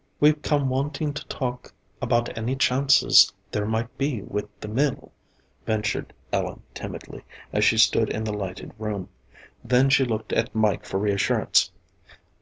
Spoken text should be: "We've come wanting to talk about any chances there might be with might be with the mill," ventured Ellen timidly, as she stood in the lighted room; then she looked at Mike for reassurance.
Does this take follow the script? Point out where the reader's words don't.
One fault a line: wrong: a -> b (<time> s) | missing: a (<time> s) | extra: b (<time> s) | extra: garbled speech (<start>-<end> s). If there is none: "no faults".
missing: might be with (4.5 s)